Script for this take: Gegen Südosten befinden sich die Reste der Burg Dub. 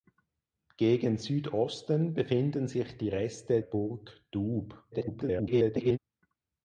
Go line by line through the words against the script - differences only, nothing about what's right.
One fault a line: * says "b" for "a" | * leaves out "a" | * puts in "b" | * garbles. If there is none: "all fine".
* leaves out "der"
* garbles